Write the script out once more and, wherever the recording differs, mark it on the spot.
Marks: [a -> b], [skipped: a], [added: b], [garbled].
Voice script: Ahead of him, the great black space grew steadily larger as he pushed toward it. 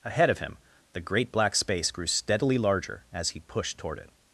Ahead of him, the great black space grew steadily larger as he pushed toward it.